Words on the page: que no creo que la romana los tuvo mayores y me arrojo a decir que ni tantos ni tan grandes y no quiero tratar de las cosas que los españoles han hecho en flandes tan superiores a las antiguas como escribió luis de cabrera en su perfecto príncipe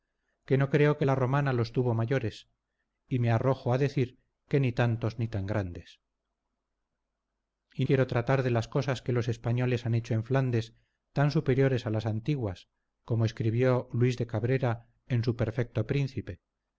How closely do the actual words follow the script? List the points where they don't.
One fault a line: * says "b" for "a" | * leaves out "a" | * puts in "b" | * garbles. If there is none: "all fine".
* leaves out "no"